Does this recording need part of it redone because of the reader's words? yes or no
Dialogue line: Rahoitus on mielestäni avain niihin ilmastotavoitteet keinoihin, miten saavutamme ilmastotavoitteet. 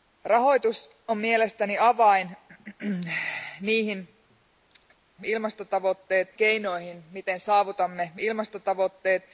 no